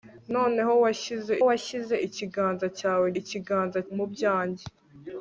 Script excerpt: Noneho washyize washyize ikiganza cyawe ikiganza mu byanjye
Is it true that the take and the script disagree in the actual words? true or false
false